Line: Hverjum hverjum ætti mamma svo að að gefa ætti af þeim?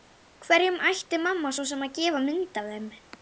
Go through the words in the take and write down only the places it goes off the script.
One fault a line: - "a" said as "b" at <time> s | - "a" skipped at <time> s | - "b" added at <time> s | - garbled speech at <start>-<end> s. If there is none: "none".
- "hverjum" skipped at 0.8 s
- "að" said as "sem" at 1.7 s
- "ætti" said as "mynd" at 2.3 s